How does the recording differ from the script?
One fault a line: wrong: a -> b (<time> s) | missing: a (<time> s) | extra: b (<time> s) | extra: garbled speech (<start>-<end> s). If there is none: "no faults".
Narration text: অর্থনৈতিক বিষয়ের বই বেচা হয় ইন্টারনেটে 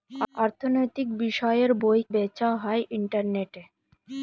no faults